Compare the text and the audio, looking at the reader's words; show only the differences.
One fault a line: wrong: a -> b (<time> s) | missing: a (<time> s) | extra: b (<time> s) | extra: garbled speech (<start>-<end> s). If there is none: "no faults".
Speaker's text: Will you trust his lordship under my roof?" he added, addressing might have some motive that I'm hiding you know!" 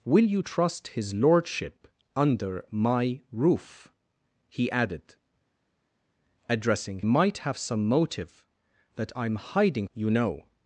no faults